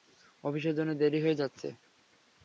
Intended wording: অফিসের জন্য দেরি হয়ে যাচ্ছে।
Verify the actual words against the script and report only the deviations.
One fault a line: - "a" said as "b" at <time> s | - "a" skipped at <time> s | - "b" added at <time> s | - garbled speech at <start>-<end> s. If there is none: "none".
none